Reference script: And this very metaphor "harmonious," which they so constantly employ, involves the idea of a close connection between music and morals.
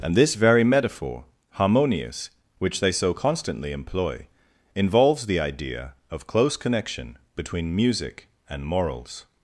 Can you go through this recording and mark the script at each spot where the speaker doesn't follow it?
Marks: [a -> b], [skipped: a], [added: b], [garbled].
And this very metaphor "harmonious," which they so constantly employ, involves the idea of [skipped: a] close connection between music and morals.